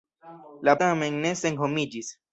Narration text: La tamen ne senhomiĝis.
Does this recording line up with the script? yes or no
yes